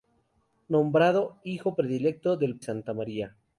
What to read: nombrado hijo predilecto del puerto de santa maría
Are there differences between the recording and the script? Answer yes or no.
yes